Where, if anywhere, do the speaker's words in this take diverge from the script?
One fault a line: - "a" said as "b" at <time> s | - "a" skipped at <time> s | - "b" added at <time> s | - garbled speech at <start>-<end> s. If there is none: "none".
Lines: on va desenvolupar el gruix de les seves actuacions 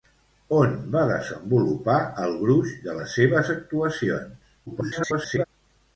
- garbled speech at 4.7-5.4 s